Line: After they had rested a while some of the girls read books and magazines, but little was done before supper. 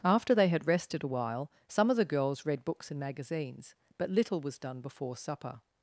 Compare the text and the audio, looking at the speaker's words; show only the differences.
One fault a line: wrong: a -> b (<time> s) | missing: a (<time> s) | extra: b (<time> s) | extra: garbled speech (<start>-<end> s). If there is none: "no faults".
no faults